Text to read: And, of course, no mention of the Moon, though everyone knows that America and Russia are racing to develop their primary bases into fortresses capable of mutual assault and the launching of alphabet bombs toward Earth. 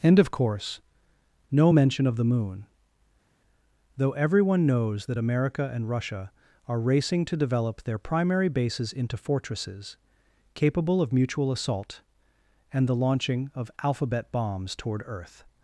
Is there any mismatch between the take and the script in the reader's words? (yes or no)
no